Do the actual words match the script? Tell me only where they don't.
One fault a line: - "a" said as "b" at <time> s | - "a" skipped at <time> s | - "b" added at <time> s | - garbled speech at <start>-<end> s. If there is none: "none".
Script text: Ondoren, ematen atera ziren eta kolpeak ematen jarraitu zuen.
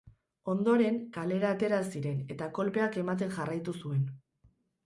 - "ematen" said as "kalera" at 1.2 s